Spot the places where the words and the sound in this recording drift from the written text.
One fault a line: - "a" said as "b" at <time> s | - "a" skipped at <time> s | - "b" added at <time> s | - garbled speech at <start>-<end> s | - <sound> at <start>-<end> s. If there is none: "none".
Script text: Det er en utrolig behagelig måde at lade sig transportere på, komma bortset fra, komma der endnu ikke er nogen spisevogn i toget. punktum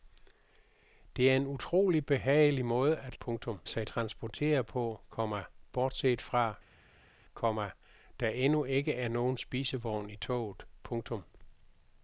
- "lade" said as "punktum" at 3.2 s